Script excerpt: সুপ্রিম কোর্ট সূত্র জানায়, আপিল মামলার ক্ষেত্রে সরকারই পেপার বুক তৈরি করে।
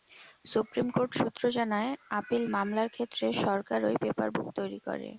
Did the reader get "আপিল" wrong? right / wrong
right